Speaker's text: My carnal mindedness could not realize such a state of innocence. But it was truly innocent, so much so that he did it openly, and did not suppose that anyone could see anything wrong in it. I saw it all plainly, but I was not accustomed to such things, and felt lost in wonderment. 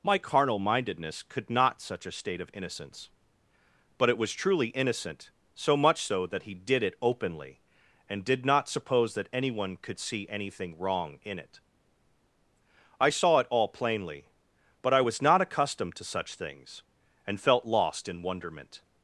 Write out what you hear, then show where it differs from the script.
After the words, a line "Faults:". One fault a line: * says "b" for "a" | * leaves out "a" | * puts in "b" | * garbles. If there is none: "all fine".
My carnal mindedness could not such a state of innocence. But it was truly innocent, so much so that he did it openly, and did not suppose that anyone could see anything wrong in it. I saw it all plainly, but I was not accustomed to such things, and felt lost in wonderment.
Faults:
* leaves out "realize"